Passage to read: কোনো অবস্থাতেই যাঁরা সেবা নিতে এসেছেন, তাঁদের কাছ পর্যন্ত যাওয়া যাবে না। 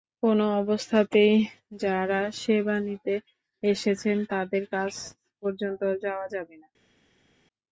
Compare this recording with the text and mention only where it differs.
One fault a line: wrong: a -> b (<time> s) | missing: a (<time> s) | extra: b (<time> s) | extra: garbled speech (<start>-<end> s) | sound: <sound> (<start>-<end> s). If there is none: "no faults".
no faults